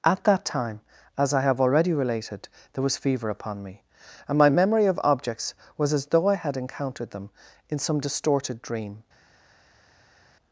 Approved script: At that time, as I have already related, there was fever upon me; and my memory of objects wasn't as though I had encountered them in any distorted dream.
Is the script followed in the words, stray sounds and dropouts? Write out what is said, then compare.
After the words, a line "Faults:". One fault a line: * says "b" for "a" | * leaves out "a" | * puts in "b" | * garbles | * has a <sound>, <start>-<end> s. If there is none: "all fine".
At that time, as I have already related, there was fever upon me; and my memory of objects was as though I had encountered them in some distorted dream.
Faults:
* says "was" for "wasn't"
* says "some" for "any"